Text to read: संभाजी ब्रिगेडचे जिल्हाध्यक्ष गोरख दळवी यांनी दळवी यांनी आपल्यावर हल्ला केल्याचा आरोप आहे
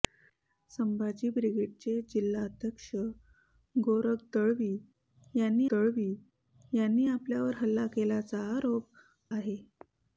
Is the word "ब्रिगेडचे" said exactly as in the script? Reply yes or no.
yes